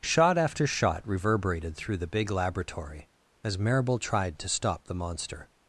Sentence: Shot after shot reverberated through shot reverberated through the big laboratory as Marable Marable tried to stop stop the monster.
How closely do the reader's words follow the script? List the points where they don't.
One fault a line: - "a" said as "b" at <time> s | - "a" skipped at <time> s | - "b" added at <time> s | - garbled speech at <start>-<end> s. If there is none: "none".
- "shot reverberated through" skipped at 2.0 s
- "Marable" skipped at 4.0 s
- "stop" skipped at 4.8 s